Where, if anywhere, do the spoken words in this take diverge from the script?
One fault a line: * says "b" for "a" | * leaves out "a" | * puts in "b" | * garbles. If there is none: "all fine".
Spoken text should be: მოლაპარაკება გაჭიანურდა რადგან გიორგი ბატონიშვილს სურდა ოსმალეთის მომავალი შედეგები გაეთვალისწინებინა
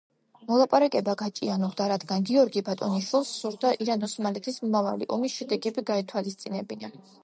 * puts in "ირან"
* puts in "ომის"